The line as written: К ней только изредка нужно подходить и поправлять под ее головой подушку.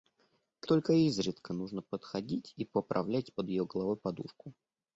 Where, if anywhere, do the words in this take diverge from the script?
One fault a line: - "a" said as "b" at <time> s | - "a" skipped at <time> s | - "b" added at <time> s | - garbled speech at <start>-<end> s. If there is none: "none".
- "ней" skipped at 0.7 s